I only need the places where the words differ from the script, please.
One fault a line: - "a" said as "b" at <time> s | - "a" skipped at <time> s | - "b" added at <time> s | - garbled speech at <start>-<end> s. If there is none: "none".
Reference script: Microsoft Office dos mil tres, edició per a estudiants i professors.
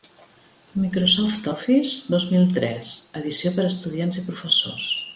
none